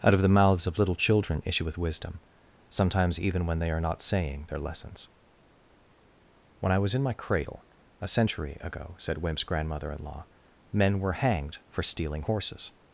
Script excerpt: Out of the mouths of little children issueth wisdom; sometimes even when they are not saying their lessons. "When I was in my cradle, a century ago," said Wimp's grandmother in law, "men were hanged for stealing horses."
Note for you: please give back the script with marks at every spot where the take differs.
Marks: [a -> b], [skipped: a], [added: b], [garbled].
Out of the mouths of little children issueth wisdom; sometimes even when they are not saying their lessons. "When I was in my cradle, a century ago," said Wimp's grandmother in law, "men were hanged for stealing horses."